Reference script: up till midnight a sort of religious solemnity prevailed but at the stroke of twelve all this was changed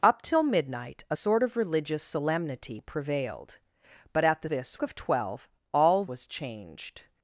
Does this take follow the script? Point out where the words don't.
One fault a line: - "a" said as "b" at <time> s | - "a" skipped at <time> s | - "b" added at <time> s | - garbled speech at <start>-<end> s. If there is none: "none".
- "stroke" said as "this" at 4.4 s
- "this" skipped at 6.0 s